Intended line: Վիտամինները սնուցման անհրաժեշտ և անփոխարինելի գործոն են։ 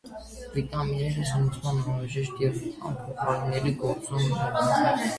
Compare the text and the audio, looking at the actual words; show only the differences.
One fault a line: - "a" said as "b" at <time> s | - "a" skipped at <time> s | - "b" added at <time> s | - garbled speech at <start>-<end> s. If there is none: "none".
none